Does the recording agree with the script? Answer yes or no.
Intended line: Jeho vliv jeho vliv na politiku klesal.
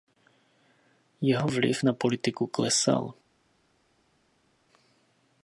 no